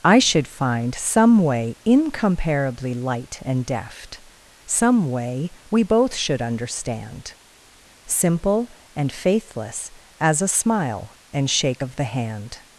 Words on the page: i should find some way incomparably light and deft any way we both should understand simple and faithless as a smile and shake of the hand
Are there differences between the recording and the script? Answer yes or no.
yes